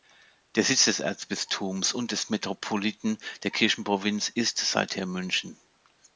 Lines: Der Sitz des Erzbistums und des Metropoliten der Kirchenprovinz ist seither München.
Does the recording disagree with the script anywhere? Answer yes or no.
no